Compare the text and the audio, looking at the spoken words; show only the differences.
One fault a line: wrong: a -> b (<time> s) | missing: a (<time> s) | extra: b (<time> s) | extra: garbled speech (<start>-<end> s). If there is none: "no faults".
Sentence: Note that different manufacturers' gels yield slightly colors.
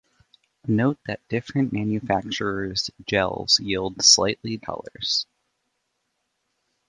no faults